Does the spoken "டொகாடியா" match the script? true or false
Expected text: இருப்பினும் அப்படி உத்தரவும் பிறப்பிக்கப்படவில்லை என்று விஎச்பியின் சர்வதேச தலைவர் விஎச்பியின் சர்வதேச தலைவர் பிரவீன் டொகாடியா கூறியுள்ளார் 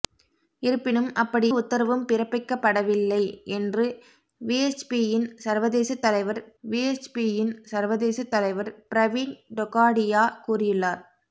true